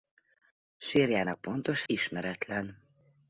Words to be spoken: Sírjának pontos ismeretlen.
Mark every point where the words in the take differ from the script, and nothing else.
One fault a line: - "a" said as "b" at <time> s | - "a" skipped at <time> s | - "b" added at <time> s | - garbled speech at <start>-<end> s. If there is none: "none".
none